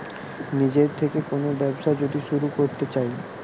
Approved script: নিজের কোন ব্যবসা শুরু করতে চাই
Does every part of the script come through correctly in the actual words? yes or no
no